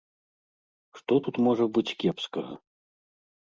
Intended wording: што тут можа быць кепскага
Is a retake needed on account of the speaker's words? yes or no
no